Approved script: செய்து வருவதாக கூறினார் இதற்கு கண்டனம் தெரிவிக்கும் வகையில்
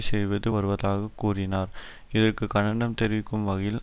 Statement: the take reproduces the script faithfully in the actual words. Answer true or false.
true